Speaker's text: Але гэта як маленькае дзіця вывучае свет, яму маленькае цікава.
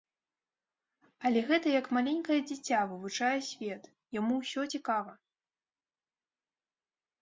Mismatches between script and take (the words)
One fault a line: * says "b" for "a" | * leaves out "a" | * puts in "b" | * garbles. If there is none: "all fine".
* says "ўсё" for "маленькае"